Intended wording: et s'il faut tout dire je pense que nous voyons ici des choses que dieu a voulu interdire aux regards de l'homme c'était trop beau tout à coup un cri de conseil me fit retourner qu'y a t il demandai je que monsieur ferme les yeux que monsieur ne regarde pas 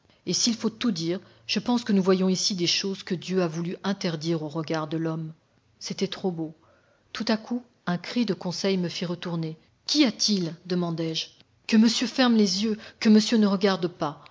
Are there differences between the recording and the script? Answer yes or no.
no